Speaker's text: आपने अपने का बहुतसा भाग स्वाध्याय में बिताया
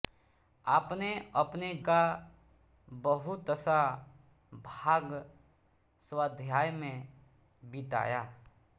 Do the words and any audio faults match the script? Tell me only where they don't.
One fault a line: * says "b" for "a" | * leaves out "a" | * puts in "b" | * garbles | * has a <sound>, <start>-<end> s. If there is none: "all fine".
all fine